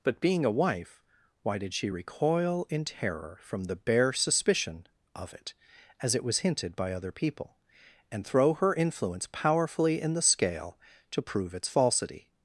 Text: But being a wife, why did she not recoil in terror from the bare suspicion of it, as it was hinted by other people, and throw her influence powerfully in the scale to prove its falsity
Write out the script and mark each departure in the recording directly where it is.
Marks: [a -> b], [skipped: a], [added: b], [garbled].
But being a wife, why did she [skipped: not] recoil in terror from the bare suspicion of it, as it was hinted by other people, and throw her influence powerfully in the scale to prove its falsity